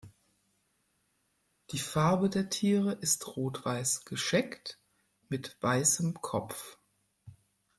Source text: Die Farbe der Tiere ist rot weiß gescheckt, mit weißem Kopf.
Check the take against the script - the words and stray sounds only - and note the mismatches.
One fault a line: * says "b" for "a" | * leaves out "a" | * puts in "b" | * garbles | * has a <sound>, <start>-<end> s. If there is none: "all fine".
all fine